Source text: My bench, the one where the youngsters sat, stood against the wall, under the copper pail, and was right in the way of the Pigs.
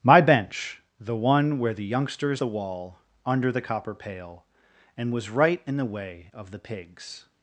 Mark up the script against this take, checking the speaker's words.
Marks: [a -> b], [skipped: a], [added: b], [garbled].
My bench, the one where the youngsters [skipped: sat, stood against] the wall, under the copper pail, and was right in the way of the Pigs.